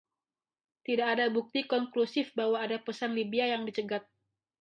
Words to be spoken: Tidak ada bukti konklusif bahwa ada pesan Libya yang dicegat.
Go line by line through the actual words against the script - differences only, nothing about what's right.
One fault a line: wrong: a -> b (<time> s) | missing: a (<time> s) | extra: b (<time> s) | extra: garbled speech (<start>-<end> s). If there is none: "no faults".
no faults